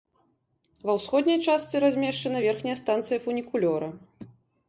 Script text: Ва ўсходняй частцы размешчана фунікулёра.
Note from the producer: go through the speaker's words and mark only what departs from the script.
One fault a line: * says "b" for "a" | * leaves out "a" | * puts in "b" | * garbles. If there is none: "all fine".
* puts in "верхняя станцыя"